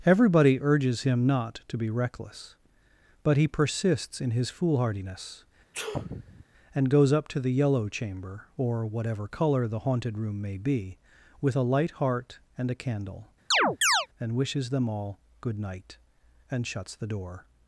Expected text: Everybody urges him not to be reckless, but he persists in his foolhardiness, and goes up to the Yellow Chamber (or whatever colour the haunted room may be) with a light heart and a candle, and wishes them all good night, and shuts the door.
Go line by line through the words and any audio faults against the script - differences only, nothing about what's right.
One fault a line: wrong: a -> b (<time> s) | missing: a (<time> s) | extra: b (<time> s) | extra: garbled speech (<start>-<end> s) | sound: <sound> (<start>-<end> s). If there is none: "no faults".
sound: sneeze (5.7-6.5 s)
sound: chirp (13.5-14.1 s)